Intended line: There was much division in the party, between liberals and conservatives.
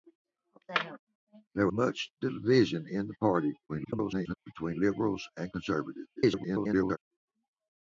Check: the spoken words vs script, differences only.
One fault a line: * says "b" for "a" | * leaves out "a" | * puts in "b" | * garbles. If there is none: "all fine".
* leaves out "was"
* garbles
* garbles